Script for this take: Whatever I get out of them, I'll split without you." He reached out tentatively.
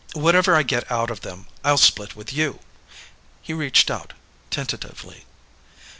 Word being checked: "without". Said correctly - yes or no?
no